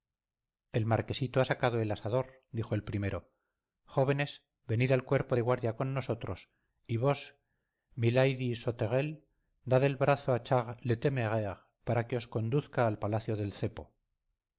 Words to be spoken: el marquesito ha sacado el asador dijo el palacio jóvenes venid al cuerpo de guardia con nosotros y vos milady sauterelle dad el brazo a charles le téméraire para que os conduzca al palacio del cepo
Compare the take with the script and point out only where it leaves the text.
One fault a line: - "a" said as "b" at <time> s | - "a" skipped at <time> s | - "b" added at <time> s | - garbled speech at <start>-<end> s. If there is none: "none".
- "palacio" said as "primero" at 2.9 s